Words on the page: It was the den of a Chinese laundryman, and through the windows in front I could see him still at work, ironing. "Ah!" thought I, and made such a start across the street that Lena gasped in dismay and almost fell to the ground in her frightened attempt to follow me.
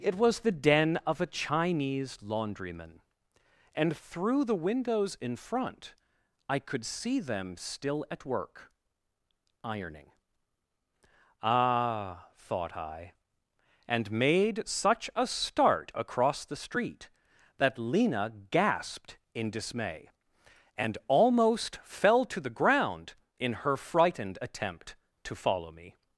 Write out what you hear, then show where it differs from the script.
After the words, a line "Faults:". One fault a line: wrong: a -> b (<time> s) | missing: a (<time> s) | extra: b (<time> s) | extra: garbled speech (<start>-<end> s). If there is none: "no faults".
It was the den of a Chinese laundryman, and through the windows in front I could see them still at work, ironing. "Ah!" thought I, and made such a start across the street that Lena gasped in dismay and almost fell to the ground in her frightened attempt to follow me.
Faults:
wrong: him -> them (7.2 s)